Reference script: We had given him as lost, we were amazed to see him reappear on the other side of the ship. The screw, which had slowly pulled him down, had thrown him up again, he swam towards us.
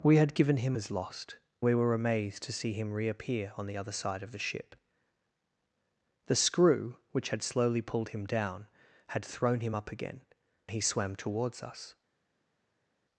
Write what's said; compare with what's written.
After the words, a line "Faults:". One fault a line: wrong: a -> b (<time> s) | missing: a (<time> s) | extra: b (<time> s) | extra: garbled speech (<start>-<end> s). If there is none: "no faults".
We had given him as lost, we were amazed to see him reappear on the other side of the ship. The screw, which had slowly pulled him down, had thrown him up again, he swam towards us.
Faults:
no faults